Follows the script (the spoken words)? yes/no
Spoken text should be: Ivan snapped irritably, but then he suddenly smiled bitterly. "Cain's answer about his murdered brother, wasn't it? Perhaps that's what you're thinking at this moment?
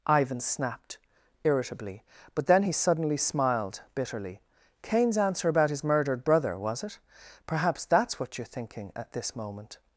no